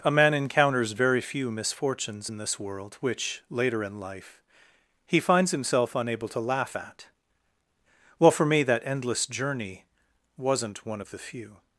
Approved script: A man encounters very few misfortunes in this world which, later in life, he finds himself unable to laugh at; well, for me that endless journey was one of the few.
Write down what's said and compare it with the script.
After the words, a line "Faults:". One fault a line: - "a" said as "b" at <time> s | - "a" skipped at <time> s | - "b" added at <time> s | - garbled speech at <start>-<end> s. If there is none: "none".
A man encounters very few misfortunes in this world which, later in life, he finds himself unable to laugh at; well, for me that endless journey wasn't one of the few.
Faults:
- "was" said as "wasn't" at 10.4 s